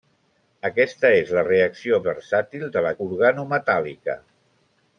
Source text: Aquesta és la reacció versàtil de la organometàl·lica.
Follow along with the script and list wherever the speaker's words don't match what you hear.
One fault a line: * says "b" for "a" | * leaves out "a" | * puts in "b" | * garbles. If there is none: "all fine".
all fine